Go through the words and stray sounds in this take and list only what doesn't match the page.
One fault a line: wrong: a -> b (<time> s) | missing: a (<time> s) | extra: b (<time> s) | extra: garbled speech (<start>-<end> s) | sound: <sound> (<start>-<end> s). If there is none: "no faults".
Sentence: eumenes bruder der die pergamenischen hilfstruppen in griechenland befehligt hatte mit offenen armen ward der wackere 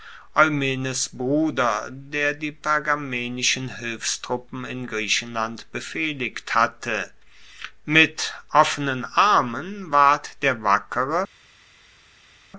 no faults